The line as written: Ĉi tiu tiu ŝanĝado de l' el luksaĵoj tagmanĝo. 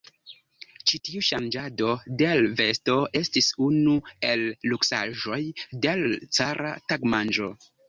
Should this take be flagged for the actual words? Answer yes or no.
yes